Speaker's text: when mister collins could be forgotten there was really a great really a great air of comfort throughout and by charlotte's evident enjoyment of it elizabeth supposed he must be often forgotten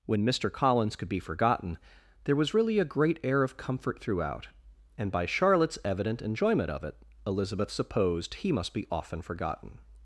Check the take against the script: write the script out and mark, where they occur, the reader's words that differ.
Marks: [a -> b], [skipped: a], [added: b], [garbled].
when mister collins could be forgotten there was really a great [skipped: really a great] air of comfort throughout and by charlotte's evident enjoyment of it elizabeth supposed he must be often forgotten